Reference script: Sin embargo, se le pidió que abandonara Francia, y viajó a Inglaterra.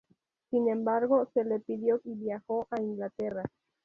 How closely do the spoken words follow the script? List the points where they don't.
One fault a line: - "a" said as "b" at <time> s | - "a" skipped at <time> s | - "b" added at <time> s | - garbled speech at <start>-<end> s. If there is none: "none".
- "que abandonara Francia" skipped at 2.0 s